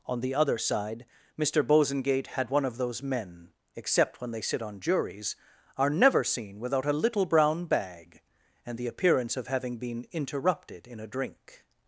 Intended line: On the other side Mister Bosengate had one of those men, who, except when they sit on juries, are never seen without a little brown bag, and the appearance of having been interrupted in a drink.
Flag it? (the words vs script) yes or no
yes